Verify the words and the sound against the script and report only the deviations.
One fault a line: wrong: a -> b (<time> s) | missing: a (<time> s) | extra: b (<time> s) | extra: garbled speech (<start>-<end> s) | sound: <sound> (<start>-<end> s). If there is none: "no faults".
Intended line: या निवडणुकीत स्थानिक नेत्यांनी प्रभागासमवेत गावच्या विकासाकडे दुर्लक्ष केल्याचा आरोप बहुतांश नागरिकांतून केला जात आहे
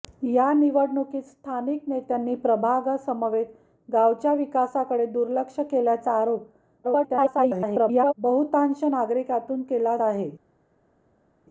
extra: garbled speech (6.8-8.1 s)
missing: जात (10.0 s)